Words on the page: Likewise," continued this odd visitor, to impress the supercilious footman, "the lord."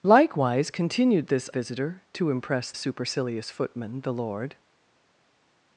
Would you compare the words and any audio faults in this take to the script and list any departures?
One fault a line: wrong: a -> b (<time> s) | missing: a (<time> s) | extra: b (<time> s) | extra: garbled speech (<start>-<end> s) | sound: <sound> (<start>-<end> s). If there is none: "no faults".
missing: odd (1.5 s)
missing: the (2.7 s)